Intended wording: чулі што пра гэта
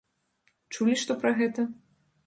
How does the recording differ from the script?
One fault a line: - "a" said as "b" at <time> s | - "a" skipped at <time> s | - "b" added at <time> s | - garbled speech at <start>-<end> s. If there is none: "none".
none